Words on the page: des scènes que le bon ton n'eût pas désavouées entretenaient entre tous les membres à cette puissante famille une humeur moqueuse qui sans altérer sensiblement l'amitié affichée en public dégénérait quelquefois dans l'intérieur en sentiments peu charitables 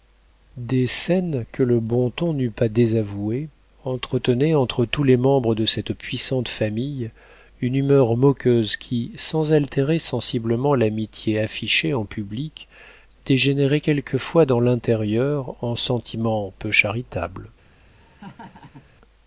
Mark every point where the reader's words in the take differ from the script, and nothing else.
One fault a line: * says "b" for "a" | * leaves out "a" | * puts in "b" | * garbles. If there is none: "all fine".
* says "de" for "à"